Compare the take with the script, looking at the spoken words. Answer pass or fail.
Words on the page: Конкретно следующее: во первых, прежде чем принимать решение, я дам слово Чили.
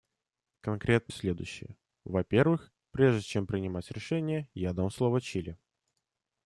pass